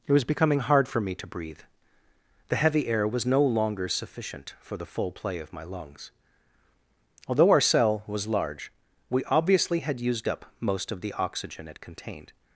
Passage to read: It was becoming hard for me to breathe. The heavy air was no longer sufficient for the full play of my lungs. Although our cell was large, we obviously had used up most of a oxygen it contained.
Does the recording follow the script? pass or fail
fail